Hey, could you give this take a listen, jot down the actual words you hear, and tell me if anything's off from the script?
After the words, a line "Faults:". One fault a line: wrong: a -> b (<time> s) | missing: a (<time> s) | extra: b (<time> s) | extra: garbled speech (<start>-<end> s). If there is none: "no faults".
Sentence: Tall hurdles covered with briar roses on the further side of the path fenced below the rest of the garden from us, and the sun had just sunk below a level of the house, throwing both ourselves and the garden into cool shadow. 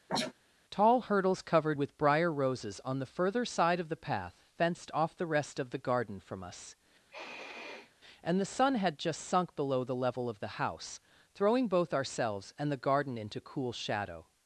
Tall hurdles covered with briar roses on the further side of the path fenced off the rest of the garden from us, and the sun had just sunk below the level of the house, throwing both ourselves and the garden into cool shadow.
Faults:
wrong: below -> off (4.9 s)
wrong: a -> the (9.8 s)